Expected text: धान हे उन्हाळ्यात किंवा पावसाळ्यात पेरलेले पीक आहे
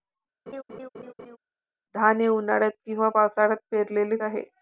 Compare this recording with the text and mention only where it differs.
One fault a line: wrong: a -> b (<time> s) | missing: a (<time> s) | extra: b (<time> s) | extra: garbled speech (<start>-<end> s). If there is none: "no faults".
missing: पीक (4.2 s)